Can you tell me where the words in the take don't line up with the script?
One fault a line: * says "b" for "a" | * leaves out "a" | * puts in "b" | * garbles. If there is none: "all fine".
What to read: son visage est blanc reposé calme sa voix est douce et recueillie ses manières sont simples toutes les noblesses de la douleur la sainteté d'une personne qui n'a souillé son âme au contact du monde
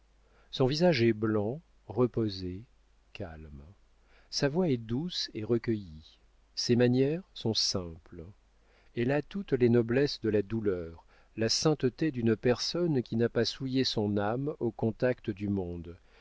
* puts in "elle a"
* puts in "pas"